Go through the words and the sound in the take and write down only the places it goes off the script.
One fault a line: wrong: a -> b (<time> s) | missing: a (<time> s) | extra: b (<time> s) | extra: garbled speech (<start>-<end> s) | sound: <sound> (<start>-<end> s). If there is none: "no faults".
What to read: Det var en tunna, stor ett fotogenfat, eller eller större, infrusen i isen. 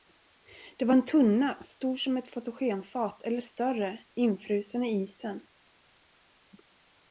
extra: som (1.9 s)
missing: eller (3.4 s)